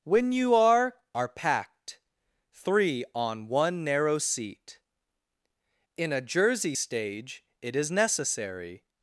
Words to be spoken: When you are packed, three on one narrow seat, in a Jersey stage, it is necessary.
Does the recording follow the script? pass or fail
fail